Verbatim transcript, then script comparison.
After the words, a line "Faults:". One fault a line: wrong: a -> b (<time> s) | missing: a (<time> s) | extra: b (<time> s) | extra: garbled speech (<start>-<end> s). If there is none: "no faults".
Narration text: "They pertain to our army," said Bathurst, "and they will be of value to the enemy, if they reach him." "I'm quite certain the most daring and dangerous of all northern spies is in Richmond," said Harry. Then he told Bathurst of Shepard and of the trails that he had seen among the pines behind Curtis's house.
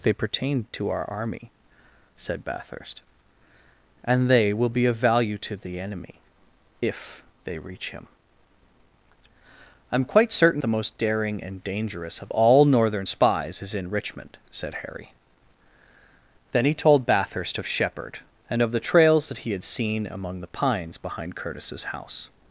"They pertain to our army," said Bathurst, "and they will be of value to the enemy, if they reach him." "I'm quite certain the most daring and dangerous of all northern spies is in Richmond," said Harry. Then he told Bathurst of Shepard and of the trails that he had seen among the pines behind Curtis's house.
Faults:
no faults